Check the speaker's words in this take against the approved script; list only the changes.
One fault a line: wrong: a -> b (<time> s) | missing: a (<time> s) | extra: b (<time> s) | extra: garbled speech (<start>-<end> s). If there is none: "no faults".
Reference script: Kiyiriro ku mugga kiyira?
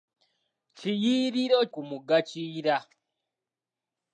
no faults